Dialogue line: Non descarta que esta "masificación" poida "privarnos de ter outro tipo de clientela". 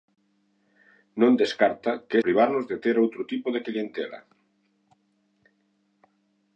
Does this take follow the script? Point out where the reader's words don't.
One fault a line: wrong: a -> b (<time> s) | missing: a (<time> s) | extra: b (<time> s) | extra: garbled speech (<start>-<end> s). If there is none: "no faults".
missing: esta masificación poida (2.2 s)